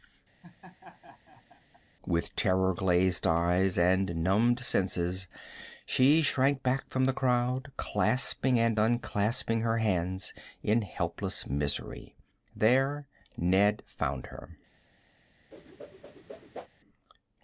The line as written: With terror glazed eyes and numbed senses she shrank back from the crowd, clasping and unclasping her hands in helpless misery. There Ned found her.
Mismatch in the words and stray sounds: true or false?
true